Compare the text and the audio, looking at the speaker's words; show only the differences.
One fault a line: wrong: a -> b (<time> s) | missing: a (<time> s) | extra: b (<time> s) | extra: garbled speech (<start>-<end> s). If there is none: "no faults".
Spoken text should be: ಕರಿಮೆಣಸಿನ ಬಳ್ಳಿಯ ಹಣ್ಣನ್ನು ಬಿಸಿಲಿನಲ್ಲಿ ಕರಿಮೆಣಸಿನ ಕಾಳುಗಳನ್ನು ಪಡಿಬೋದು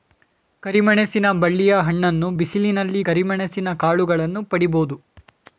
no faults